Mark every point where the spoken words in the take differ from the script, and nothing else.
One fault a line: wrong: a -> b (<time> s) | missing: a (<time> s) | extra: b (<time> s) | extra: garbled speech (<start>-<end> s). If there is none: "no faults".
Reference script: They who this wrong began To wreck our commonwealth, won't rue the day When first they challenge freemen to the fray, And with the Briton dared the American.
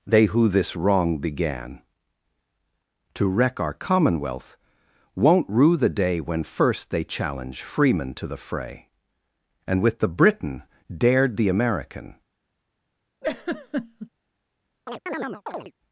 no faults